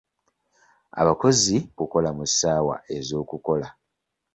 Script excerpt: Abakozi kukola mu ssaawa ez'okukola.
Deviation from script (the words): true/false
false